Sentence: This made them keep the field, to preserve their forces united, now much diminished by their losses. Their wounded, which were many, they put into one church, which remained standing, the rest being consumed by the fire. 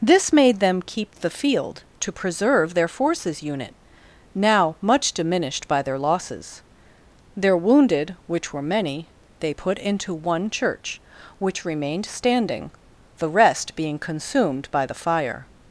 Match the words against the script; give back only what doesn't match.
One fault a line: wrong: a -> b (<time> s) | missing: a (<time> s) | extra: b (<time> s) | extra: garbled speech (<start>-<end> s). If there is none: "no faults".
wrong: united -> unit (3.4 s)